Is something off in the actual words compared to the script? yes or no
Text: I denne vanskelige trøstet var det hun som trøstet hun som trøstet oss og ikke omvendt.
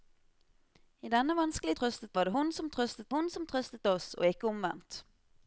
no